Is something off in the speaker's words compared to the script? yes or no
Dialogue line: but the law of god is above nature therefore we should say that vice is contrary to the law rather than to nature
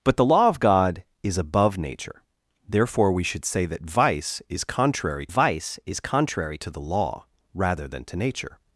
yes